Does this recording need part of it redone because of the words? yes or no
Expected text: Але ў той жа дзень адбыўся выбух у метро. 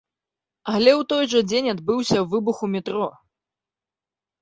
no